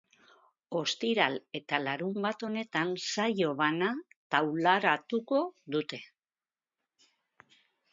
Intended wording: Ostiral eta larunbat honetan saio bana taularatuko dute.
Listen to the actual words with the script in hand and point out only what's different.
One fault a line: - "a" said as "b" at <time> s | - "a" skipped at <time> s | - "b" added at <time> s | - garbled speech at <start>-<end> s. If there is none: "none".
none